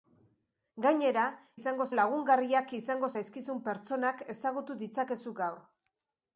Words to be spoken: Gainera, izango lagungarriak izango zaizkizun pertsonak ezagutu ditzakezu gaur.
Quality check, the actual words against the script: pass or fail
pass